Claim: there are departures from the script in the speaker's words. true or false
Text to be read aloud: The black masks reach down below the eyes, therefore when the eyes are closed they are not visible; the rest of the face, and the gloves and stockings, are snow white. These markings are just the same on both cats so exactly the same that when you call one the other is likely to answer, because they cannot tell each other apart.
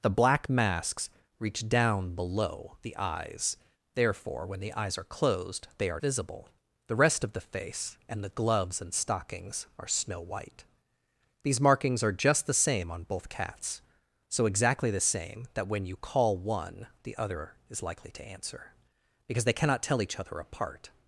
true